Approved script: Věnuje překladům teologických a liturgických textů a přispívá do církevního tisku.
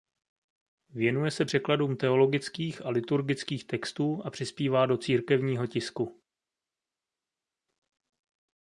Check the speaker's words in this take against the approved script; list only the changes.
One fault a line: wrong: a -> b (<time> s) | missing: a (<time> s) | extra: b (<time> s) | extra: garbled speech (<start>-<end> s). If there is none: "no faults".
extra: se (1.3 s)